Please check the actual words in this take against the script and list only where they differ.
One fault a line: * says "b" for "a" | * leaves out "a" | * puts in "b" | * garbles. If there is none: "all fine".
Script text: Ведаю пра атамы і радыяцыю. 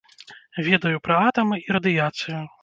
all fine